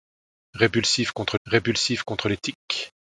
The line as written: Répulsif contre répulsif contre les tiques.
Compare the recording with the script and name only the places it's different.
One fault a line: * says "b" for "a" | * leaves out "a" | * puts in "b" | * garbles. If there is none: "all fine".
all fine